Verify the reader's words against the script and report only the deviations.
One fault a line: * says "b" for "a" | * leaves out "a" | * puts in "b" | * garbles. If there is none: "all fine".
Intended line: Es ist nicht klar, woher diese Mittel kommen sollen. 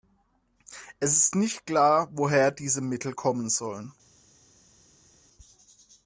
all fine